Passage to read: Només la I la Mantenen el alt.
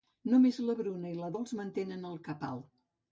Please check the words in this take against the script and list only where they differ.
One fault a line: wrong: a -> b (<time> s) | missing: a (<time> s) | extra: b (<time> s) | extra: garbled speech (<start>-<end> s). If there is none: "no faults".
extra: Bruna (0.8 s)
extra: Dols (1.3 s)
extra: cap (2.3 s)